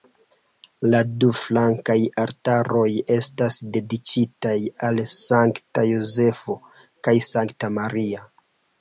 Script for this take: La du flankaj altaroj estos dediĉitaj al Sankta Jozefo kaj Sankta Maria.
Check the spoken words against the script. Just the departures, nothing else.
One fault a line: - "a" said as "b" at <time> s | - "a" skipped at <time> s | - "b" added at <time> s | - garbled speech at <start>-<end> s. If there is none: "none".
- "estos" said as "estas" at 3.2 s